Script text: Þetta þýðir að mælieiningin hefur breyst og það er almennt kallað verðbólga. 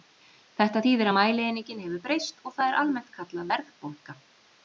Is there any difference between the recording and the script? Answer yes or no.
no